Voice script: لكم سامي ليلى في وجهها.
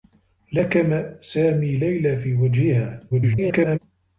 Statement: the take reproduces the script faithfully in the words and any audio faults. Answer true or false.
false